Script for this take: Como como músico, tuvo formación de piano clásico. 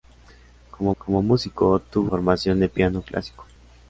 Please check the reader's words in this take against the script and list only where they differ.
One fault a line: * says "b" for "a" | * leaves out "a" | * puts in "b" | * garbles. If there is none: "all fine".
all fine